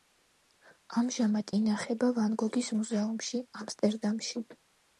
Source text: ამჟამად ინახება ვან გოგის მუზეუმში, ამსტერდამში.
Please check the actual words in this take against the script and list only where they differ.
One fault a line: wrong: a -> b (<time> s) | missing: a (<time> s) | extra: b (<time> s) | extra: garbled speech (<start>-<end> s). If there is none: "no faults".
no faults